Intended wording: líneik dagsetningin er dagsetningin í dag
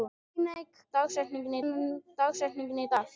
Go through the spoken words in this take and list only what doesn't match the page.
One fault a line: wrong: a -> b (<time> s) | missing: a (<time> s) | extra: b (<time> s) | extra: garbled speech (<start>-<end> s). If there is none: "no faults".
no faults